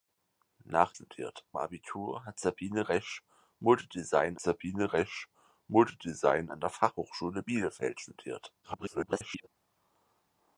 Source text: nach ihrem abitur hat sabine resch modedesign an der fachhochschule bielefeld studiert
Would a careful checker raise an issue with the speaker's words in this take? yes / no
yes